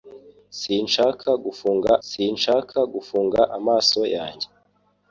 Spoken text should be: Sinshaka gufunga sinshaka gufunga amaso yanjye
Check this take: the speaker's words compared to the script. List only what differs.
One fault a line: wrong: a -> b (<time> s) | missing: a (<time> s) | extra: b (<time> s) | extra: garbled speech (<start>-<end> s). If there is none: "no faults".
no faults